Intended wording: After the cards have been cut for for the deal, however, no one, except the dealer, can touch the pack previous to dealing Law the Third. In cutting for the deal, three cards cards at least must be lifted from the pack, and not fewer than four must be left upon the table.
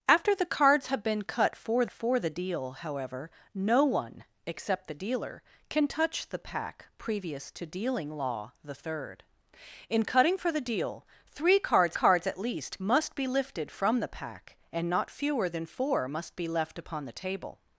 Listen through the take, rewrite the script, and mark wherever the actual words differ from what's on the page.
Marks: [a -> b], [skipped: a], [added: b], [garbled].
After the cards have been cut for for the deal, however, no one, except the dealer, can touch the pack previous to dealing Law the Third. In cutting for the deal, three cards cards at least must be lifted from the pack, and not fewer than four must be left upon the table.